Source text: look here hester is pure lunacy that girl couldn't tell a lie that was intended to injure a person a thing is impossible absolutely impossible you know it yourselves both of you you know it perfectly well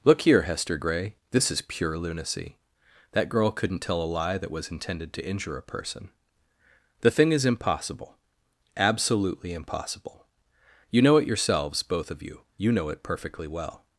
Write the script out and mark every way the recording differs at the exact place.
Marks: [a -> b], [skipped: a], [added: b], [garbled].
look here hester [added: gray this] is pure lunacy that girl couldn't tell a lie that was intended to injure a person [a -> the] thing is impossible absolutely impossible you know it yourselves both of you you know it perfectly well